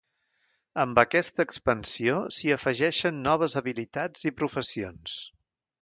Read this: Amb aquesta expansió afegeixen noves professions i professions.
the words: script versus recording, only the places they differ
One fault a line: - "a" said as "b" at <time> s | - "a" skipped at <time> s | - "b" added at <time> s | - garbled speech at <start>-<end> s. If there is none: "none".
- "s'hi" added at 2.4 s
- "professions" said as "habilitats" at 3.6 s